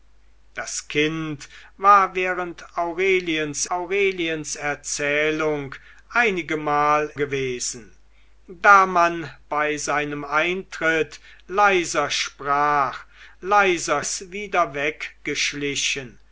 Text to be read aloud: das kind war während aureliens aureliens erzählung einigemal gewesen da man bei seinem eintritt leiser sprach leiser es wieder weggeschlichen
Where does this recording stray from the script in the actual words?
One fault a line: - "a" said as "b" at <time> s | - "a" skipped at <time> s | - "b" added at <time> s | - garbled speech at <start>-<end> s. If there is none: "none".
none